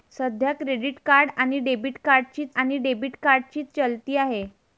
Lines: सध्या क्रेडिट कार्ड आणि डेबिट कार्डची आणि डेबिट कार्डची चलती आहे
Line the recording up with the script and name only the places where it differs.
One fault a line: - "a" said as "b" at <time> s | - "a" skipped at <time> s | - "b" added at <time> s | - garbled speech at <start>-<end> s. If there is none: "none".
none